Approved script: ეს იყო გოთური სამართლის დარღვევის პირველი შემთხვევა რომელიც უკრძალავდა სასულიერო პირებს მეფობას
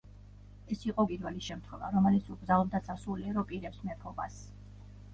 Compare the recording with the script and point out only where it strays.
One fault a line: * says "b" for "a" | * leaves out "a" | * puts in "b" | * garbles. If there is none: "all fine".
* leaves out "გოთური სამართლის დარღვევის"